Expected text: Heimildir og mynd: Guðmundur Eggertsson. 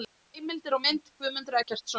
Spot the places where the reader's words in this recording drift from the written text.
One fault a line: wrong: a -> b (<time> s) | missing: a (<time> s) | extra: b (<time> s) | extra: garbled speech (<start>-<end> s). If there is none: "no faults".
no faults